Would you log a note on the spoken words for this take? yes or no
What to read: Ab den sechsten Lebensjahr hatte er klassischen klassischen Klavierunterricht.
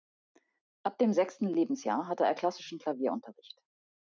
yes